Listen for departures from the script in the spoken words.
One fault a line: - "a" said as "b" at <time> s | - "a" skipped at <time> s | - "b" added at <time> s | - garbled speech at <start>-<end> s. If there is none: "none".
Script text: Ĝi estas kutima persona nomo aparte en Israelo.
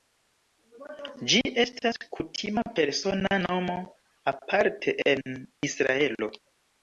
none